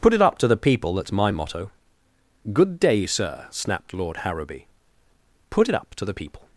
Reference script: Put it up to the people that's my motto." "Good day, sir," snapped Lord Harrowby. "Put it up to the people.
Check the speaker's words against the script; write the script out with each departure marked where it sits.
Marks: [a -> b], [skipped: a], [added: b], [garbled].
Put it up to the people that's my motto." "Good day, sir," snapped Lord Harrowby. "Put it up to the people.